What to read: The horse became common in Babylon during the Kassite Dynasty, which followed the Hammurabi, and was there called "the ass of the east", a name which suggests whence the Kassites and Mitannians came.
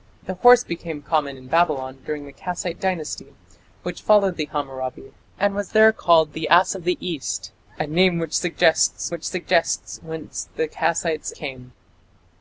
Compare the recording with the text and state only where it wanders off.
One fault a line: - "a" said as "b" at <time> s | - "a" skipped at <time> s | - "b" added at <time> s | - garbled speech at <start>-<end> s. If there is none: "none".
- "which suggests" added at 9.1 s
- "and Mitannians" skipped at 11.3 s